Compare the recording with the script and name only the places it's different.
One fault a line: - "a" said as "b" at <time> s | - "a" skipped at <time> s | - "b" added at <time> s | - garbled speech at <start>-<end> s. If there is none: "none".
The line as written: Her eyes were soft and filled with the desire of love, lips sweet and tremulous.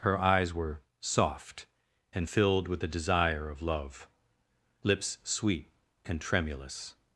none